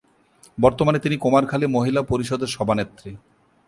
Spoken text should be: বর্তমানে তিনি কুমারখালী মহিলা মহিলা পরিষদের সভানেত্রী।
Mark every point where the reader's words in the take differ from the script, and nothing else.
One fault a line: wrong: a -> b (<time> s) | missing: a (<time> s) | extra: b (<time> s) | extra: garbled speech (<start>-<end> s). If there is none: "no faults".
missing: মহিলা (2.0 s)